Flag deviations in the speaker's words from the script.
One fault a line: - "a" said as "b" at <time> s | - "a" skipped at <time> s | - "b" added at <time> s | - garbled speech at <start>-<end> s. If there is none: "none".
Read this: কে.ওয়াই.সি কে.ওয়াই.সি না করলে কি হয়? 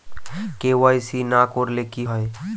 - "কে.ওয়াই.সি" skipped at 1.2 s